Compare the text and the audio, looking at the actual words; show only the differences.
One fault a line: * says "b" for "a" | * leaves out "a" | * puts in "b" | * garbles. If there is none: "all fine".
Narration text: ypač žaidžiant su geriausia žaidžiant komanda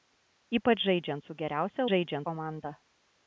all fine